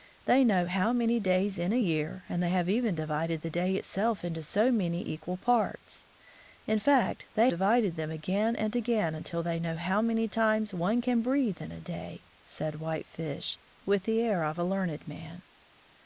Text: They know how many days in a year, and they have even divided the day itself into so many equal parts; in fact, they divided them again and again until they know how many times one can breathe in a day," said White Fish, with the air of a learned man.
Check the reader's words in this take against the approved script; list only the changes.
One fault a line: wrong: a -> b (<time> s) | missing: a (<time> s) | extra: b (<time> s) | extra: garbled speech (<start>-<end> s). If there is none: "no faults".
no faults